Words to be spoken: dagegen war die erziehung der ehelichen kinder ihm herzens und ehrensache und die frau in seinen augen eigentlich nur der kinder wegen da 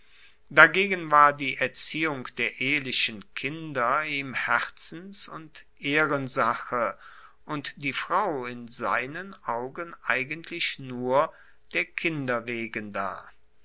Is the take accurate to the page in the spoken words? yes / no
yes